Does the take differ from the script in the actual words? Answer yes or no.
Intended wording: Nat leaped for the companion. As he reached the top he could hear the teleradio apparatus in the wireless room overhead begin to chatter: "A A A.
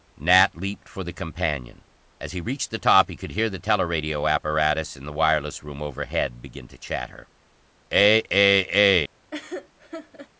no